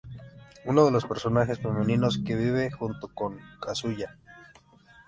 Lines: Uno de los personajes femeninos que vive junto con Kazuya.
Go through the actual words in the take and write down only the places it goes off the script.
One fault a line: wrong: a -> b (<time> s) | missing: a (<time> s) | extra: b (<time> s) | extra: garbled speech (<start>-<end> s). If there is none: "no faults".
no faults